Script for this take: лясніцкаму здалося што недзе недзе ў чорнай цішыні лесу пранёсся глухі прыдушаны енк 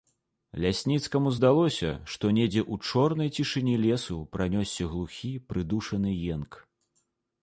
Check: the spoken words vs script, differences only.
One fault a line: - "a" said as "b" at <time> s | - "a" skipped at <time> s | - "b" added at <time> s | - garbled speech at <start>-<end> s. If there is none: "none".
- "недзе" skipped at 2.6 s